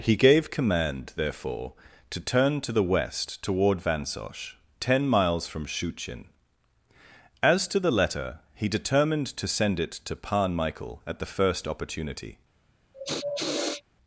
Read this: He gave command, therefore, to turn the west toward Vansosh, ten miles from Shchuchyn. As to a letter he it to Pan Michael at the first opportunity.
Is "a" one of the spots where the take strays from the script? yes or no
yes